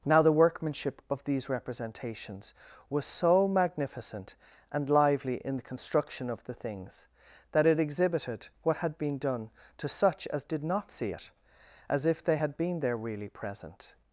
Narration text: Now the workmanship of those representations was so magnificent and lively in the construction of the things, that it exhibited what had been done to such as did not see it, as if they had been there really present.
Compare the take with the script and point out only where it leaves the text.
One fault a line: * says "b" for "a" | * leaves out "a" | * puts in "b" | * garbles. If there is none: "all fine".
* says "these" for "those"